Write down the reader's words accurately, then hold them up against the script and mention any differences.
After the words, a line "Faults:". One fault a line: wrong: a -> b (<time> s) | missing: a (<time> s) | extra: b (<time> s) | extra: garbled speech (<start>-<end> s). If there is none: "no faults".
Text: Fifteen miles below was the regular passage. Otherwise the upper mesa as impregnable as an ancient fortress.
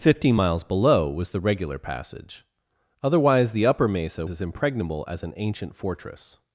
Fifteen miles below was the regular passage. Otherwise the upper mesa as impregnable as an ancient fortress.
Faults:
no faults